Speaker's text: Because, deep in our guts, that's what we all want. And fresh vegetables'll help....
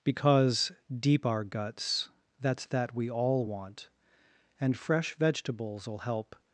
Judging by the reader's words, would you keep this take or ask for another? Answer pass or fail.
fail